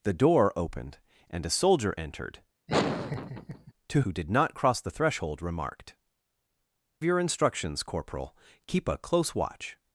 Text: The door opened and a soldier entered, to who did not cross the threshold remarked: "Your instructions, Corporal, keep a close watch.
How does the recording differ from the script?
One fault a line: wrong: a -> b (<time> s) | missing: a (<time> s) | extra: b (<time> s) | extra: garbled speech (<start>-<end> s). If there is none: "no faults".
no faults